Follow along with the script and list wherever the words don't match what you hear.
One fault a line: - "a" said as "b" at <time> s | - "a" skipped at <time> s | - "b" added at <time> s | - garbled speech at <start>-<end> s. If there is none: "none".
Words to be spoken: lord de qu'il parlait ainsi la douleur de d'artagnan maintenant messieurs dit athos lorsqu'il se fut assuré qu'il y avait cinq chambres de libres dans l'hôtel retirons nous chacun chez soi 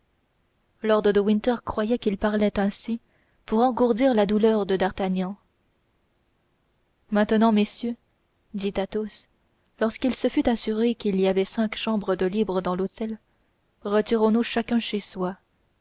- "winter croyait" added at 1.2 s
- "pour engourdir" added at 3.5 s